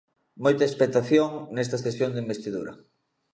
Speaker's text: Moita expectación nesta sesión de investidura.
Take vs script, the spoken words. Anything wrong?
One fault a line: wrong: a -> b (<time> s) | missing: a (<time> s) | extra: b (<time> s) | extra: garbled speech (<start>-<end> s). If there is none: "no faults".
no faults